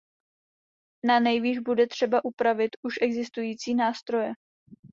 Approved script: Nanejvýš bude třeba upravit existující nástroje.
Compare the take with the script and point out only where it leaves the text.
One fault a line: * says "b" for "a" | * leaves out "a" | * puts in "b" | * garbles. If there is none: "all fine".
* puts in "už"